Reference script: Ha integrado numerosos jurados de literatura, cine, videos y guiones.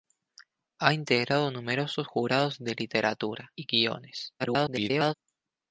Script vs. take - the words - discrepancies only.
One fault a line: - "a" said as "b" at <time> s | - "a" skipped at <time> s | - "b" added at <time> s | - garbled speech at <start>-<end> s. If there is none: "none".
- "cine videos" skipped at 3.5 s
- garbled speech at 4.4-5.1 s